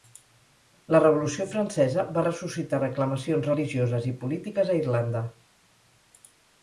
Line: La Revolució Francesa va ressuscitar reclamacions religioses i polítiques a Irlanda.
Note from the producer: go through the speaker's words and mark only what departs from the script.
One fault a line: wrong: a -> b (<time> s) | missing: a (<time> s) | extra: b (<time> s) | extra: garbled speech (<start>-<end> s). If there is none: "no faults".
no faults